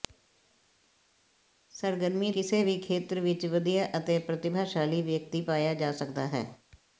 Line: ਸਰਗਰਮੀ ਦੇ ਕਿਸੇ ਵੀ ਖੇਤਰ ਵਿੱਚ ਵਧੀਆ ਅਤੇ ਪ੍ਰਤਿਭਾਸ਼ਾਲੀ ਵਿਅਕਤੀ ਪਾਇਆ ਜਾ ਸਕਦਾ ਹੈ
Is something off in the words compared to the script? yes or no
yes